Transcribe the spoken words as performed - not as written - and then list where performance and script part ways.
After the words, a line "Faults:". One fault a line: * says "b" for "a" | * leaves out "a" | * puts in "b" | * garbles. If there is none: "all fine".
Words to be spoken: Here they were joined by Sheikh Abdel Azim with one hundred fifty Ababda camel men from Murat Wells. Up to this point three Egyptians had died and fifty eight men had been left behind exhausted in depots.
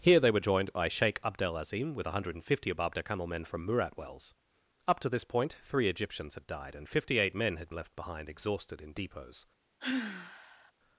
Here they were joined by Sheikh Abdel Azim with one hundred fifty Ababda camel men from Murat Wells. Up to this point three Egyptians had died and fifty eight men had left behind exhausted in depots.
Faults:
* leaves out "been"